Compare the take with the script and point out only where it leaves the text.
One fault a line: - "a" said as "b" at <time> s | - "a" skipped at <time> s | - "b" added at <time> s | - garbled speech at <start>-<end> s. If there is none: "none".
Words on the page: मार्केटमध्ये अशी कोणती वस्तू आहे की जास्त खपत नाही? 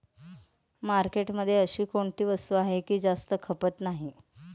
none